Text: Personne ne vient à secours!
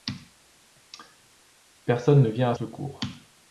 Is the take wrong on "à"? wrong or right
right